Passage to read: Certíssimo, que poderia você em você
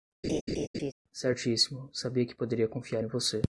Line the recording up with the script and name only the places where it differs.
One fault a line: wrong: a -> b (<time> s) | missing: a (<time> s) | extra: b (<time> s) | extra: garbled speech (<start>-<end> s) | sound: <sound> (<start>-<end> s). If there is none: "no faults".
sound: laugh (0.2-0.9 s)
extra: sabia (1.9 s)
wrong: você -> confiar (2.7 s)